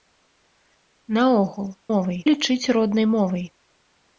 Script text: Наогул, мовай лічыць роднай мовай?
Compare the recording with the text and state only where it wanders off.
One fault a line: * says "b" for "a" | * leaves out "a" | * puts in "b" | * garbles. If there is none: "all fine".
all fine